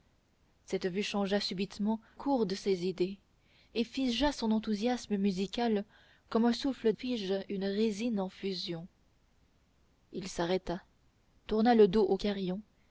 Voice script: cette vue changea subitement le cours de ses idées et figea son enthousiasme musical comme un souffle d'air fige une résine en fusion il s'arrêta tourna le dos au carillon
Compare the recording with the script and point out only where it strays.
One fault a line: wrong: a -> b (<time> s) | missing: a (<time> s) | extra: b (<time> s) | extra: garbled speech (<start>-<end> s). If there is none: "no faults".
missing: le (2.0 s)
missing: d'air (6.9 s)